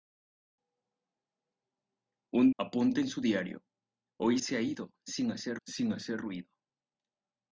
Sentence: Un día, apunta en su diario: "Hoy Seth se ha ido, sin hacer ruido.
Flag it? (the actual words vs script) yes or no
yes